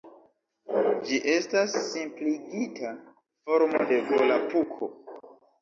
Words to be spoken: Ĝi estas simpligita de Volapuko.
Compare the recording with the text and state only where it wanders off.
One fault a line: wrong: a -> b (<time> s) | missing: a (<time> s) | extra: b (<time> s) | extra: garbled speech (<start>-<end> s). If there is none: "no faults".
extra: formo (3.5 s)